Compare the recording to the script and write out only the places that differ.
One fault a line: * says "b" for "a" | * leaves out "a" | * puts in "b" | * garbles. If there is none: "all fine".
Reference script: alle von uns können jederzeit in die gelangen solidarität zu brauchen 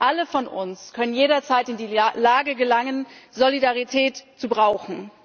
* puts in "lage"